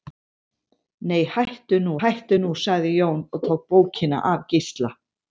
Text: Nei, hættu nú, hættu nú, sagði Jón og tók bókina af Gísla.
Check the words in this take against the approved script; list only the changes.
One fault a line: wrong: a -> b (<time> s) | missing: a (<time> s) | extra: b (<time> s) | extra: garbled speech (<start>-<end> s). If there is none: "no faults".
no faults